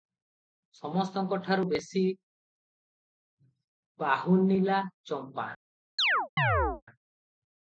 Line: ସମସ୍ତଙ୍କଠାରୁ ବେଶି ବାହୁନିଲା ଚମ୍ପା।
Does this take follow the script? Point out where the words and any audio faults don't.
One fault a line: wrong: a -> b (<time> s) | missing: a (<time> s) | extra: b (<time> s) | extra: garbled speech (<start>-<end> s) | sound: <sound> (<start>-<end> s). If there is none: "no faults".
sound: chirp (6.0-6.8 s)